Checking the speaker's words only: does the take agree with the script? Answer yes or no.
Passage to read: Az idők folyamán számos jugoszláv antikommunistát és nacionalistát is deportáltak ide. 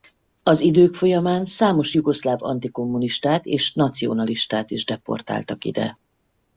yes